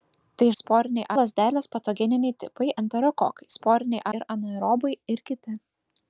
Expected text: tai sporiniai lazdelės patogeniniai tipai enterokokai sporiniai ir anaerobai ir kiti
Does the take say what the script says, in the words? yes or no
yes